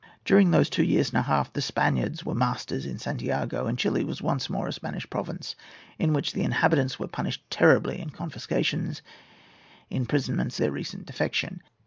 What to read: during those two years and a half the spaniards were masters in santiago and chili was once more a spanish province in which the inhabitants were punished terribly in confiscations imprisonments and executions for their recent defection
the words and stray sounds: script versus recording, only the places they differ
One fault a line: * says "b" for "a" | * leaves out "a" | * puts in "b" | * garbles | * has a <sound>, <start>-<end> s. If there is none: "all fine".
* leaves out "and executions for"